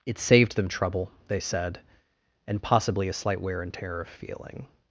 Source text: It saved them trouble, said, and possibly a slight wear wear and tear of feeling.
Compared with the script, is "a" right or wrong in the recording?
right